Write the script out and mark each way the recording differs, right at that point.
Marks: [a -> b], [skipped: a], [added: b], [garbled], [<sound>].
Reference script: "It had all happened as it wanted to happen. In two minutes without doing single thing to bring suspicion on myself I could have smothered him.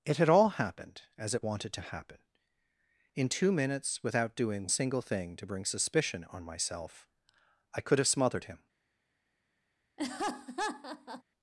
"It had all happened as it wanted to happen. In two minutes without doing single thing to bring suspicion on myself I could have smothered him. [laugh]